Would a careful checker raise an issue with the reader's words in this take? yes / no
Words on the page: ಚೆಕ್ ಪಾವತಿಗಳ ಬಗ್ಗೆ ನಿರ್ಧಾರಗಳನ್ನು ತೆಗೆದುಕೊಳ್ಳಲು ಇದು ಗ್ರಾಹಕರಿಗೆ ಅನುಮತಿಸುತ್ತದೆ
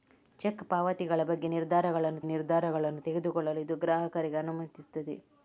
yes